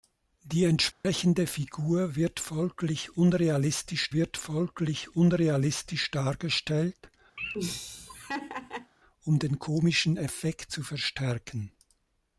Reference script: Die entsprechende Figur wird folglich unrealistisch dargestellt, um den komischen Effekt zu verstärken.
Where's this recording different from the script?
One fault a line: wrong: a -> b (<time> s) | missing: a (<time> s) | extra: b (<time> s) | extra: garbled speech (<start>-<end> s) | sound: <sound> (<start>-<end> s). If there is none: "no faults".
sound: dropout (0.9-1.0 s)
extra: wird folglich unrealistisch (4.1 s)
sound: laugh (7.4-8.9 s)